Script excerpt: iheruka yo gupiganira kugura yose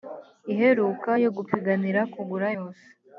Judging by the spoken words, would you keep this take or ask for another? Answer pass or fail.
pass